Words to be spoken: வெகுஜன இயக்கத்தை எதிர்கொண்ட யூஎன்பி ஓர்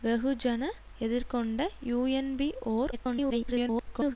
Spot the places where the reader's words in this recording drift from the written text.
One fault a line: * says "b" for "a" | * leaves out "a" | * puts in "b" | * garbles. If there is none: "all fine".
* leaves out "இயக்கத்தை"
* garbles